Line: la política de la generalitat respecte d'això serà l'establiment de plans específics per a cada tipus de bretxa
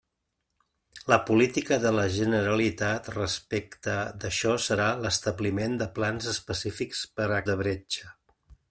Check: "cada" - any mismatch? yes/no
yes